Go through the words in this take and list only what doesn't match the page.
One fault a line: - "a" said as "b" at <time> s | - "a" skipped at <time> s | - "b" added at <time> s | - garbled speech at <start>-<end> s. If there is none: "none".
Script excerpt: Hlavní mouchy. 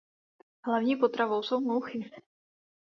- "potravou jsou" added at 0.9 s